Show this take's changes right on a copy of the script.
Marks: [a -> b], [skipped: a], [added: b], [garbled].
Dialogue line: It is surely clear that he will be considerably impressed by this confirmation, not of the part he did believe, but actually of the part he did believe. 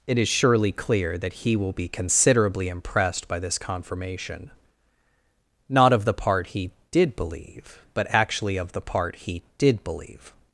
It is surely clear that he will be considerably impressed by this confirmation, not of the part he did believe, but actually of the part he did believe.